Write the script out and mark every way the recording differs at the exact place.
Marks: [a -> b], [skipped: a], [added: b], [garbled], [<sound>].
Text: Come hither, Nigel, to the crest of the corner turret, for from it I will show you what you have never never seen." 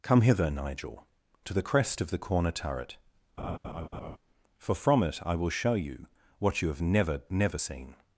Come hither, Nigel, to the crest of the corner turret, [laugh] for from it I will show you what you have never never seen."